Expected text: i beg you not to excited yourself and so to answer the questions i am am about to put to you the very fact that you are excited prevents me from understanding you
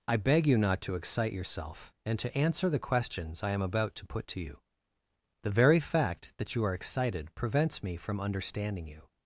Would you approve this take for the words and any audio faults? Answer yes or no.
no